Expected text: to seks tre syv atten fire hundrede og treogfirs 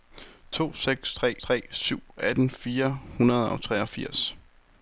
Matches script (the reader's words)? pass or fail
fail